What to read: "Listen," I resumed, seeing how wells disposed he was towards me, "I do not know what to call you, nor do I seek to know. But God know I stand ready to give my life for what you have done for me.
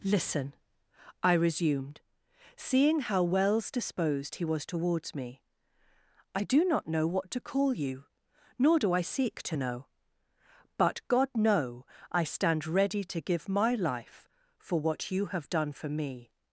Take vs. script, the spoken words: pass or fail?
pass